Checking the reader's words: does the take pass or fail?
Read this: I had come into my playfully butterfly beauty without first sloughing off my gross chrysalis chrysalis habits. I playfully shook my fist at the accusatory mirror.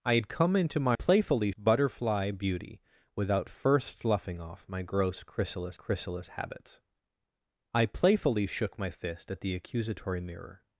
pass